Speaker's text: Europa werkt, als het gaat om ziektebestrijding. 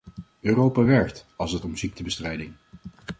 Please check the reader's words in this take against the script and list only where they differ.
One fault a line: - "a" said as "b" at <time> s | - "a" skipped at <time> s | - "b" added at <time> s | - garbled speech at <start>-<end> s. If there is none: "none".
- "gaat" skipped at 1.6 s